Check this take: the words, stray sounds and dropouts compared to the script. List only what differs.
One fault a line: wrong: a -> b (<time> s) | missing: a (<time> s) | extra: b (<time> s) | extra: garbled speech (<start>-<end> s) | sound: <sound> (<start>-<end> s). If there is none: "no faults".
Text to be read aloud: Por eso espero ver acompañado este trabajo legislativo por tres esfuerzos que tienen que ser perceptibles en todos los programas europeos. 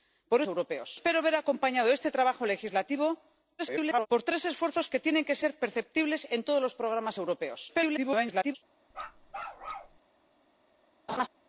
wrong: eso -> europeos (0.5 s)
extra: garbled speech (3.6-4.1 s)
extra: garbled speech (7.7-8.6 s)
sound: bark (8.9-10.0 s)
sound: laugh (11.1-11.3 s)